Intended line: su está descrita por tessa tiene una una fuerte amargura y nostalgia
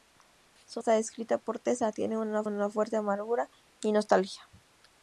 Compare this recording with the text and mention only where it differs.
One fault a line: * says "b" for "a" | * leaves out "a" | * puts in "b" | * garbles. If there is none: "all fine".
all fine